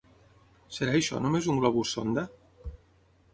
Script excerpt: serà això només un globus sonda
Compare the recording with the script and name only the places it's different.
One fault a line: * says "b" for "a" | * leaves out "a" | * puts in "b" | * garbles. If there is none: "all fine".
all fine